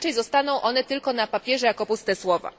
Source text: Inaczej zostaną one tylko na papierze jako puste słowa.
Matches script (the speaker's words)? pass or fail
pass